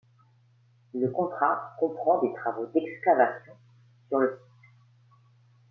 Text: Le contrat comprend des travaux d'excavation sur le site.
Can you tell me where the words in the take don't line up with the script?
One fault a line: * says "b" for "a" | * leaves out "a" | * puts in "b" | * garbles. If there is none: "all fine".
all fine